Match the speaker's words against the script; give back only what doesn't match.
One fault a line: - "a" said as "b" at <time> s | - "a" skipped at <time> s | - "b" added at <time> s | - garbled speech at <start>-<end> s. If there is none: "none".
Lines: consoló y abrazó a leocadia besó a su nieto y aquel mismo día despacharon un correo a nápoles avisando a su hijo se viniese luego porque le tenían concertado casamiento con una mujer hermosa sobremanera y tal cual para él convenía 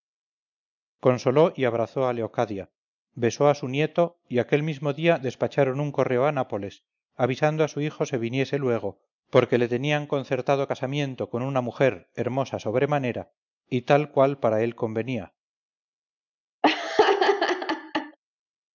none